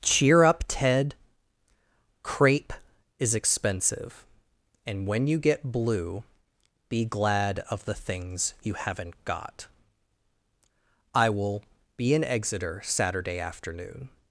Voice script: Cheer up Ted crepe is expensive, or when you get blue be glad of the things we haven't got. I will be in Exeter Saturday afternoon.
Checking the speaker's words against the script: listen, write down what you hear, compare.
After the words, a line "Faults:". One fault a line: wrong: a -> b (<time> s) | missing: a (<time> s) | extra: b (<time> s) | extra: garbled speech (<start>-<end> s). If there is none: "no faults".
Cheer up Ted crepe is expensive, and when you get blue be glad of the things you haven't got. I will be in Exeter Saturday afternoon.
Faults:
wrong: or -> and (4.8 s)
wrong: we -> you (8.6 s)